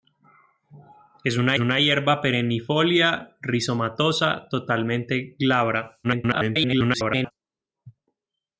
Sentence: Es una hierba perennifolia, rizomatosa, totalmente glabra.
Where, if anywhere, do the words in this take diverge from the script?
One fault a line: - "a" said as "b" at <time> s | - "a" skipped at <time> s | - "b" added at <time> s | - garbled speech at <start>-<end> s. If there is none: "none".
- "una" added at 1.6 s
- garbled speech at 6.0-7.3 s